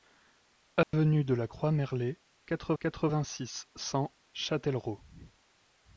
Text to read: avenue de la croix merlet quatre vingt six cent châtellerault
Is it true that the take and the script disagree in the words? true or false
true